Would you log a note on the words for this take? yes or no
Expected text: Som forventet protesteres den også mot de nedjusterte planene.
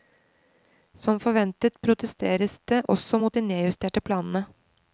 yes